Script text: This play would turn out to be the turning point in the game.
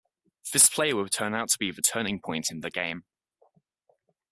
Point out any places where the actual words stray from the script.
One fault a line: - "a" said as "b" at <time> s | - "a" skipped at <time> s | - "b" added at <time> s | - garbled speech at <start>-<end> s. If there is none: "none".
none